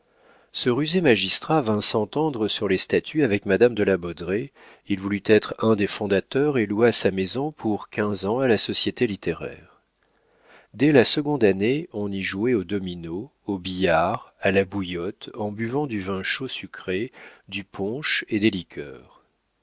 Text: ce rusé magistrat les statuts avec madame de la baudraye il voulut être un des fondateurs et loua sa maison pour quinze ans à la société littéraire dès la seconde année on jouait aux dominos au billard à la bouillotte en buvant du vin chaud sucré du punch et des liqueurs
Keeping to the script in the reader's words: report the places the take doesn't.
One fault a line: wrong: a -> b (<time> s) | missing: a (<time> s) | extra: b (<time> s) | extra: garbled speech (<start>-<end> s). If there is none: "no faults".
extra: vint s'entendre sur (1.6 s)
extra: y (12.1 s)